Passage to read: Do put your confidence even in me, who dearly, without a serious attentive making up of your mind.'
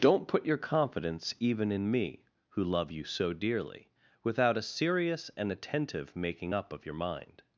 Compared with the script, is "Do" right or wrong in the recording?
wrong